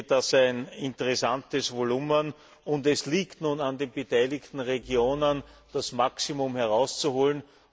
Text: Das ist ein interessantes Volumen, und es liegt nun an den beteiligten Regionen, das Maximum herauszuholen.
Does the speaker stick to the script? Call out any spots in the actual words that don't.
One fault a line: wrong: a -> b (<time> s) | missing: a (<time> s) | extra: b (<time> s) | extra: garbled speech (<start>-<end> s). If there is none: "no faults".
missing: ist (0.3 s)